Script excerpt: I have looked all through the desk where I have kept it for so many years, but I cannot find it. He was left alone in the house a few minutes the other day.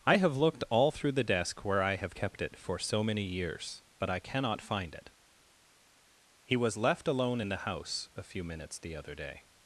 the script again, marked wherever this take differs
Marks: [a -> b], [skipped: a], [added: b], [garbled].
I have looked all through the desk where I have kept it for so many years, but I cannot find it. He was left alone in the house a few minutes the other day.